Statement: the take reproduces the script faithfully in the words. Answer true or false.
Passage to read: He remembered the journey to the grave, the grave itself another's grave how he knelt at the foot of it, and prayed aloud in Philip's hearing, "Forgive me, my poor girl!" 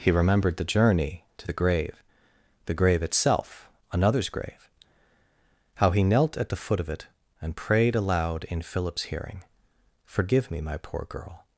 true